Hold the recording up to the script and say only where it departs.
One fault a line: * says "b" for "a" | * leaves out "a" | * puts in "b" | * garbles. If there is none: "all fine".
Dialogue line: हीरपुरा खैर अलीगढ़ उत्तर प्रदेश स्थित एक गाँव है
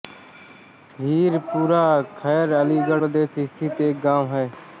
* leaves out "उत्तर"